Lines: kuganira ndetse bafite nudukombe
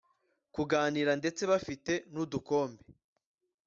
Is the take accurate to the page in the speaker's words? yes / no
yes